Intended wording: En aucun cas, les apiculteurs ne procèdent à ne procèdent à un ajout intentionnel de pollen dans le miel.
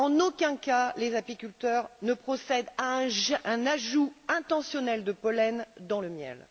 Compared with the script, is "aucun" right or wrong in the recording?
right